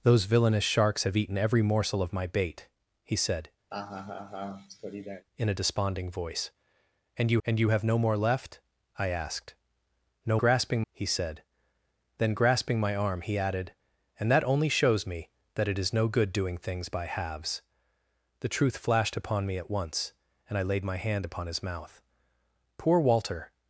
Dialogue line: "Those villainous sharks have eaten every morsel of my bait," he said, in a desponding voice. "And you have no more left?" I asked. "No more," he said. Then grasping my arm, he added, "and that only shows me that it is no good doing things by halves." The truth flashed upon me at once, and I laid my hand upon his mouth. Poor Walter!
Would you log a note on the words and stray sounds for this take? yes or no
yes